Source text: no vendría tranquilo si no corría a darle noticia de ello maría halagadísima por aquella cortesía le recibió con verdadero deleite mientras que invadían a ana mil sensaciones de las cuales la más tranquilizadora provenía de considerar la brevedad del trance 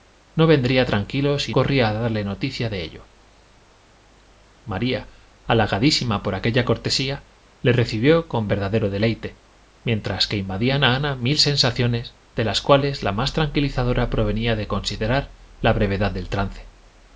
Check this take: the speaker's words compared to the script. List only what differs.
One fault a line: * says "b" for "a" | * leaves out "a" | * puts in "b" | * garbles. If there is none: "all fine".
* leaves out "no"